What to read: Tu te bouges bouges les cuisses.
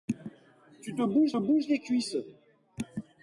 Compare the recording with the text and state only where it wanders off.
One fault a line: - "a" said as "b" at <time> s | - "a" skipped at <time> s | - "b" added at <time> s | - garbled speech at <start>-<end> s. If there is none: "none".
none